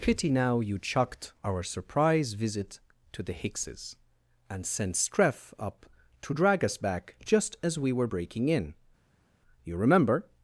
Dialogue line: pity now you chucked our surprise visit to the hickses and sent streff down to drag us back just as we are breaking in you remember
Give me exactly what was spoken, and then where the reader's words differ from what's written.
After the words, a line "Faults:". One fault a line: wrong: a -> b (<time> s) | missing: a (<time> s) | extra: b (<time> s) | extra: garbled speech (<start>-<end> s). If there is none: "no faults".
pity now you chucked our surprise visit to the hickses and sent streff up to drag us back just as we were breaking in you remember
Faults:
wrong: down -> up (5.6 s)
wrong: are -> were (7.9 s)